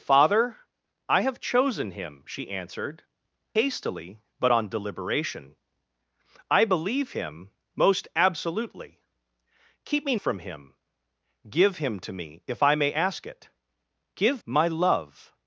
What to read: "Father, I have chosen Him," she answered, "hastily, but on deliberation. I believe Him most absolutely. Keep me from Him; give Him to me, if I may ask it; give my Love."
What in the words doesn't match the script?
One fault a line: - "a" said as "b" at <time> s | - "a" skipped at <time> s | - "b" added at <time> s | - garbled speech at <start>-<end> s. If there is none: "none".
none